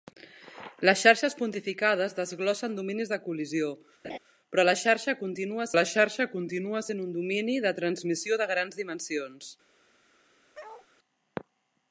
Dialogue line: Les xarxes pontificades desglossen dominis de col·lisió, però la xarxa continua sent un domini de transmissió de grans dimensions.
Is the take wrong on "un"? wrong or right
right